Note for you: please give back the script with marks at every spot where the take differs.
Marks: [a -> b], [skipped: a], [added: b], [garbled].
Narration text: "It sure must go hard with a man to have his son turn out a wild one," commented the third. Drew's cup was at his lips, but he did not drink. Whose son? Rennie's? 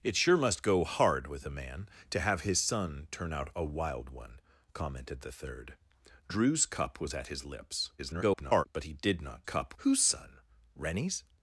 "It sure must go hard with a man to have his son turn out a wild one," commented the third. Drew's cup was at his lips, [garbled] but he did not [drink. -> cup] Whose son? Rennie's?